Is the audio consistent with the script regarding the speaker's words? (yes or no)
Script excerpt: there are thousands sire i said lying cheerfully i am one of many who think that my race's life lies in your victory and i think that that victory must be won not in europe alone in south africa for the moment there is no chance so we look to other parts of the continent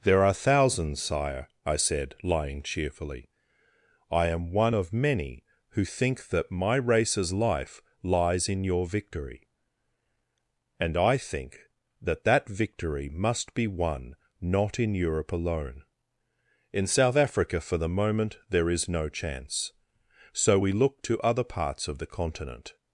yes